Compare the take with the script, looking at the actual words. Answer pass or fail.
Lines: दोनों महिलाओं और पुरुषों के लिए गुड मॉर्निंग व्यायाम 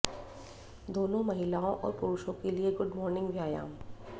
pass